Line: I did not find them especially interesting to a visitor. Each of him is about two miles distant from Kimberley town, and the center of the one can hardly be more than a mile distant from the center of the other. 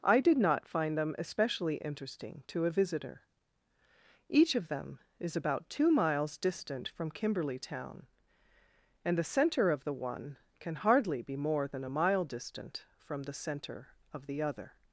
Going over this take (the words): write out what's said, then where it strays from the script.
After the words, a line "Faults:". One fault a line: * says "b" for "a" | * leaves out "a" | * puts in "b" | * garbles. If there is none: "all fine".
I did not find them especially interesting to a visitor. Each of them is about two miles distant from Kimberley town, and the center of the one can hardly be more than a mile distant from the center of the other.
Faults:
* says "them" for "him"